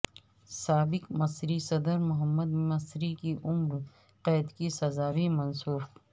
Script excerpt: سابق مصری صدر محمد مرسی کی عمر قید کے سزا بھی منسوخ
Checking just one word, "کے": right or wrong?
wrong